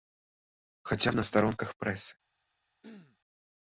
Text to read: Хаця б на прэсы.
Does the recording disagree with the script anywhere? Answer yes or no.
yes